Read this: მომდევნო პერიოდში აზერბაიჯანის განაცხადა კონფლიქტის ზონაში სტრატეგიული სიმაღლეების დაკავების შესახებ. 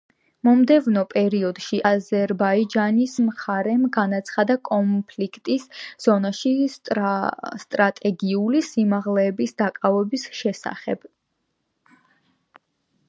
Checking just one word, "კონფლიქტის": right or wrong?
right